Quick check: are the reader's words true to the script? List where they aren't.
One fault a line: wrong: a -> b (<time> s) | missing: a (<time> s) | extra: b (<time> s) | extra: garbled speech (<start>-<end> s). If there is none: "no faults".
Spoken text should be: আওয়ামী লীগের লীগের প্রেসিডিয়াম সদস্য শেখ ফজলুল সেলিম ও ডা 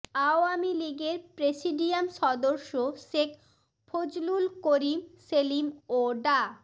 missing: লীগের (1.2 s)
extra: করিম (4.7 s)